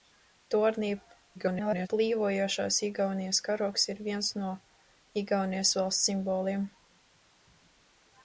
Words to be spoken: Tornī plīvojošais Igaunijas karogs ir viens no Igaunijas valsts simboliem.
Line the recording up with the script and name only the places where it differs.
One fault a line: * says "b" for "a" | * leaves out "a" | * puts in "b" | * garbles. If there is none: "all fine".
* garbles